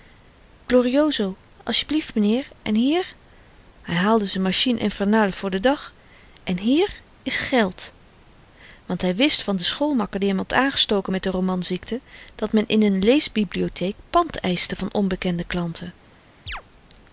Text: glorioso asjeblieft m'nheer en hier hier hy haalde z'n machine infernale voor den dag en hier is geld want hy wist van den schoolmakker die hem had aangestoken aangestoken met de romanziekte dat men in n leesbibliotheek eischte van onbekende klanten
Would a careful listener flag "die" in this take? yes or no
no